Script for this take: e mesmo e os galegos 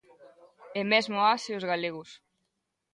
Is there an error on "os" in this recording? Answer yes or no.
no